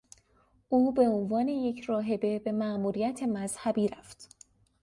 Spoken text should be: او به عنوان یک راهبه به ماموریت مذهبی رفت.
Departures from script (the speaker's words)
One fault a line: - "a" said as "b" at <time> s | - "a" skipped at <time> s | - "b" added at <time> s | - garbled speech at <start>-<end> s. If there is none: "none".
none